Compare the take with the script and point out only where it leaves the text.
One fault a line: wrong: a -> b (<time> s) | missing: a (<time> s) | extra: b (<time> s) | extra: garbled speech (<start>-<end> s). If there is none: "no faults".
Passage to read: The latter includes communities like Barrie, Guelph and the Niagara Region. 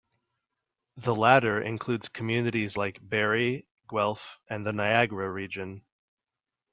no faults